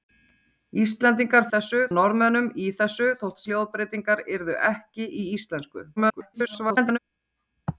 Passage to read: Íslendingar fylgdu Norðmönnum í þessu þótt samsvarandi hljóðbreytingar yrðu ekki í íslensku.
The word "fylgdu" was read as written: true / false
false